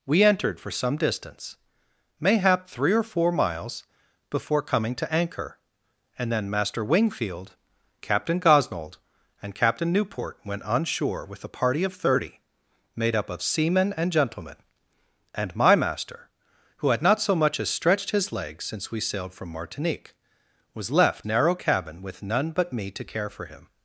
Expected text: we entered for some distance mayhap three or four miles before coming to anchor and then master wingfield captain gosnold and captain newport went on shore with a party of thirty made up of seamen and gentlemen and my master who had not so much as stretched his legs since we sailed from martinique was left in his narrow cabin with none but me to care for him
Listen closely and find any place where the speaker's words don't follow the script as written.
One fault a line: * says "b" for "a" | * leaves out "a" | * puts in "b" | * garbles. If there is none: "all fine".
* leaves out "in his"